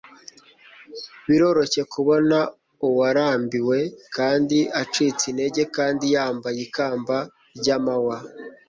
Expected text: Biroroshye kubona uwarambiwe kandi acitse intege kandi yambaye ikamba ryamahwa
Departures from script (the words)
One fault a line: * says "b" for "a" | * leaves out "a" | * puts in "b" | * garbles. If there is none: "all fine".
all fine